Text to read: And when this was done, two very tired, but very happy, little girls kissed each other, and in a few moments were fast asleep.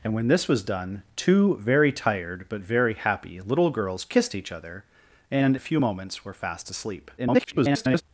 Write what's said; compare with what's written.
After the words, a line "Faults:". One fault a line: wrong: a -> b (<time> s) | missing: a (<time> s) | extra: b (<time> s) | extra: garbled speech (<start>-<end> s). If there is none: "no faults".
And when this was done, two very tired, but very happy, little girls kissed each other, and a few moments were fast asleep. [garbled]
Faults:
missing: in (5.5 s)
extra: garbled speech (7.2-8.0 s)